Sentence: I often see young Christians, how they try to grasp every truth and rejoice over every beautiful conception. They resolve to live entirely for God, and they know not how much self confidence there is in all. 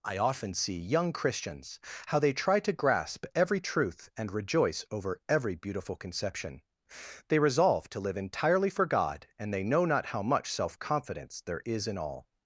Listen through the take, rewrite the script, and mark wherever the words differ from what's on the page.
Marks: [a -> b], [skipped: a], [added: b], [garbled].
I often see young Christians, how they try to grasp every truth and rejoice over every beautiful conception. They resolve to live entirely for God, and they know not how much self confidence there is in all.